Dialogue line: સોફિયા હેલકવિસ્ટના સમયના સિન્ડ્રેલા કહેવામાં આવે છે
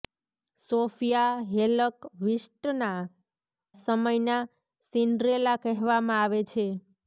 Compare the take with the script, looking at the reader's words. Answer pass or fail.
pass